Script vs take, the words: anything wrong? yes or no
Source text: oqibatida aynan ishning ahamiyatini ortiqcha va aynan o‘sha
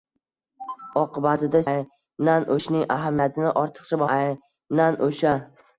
no